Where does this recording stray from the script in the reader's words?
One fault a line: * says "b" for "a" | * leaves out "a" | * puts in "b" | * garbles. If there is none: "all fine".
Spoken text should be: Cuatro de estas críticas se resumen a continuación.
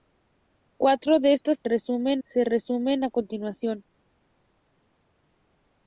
* says "resumen" for "críticas"